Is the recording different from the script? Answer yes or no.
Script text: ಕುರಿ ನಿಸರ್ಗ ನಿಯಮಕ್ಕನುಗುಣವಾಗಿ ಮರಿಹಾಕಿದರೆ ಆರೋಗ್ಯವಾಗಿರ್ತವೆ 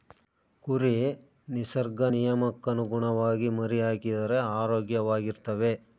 no